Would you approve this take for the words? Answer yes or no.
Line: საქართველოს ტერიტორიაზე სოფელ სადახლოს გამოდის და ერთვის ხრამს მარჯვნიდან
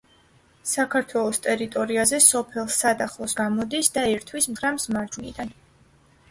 yes